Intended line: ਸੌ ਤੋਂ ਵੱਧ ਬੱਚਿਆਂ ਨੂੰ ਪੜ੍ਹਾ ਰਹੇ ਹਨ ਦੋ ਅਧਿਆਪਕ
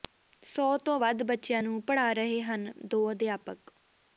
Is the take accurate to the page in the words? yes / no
yes